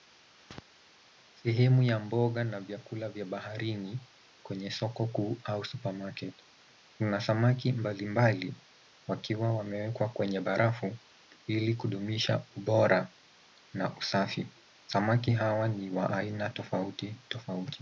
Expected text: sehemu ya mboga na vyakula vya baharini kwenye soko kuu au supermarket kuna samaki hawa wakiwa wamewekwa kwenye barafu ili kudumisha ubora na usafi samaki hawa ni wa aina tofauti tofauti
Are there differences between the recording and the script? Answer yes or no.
yes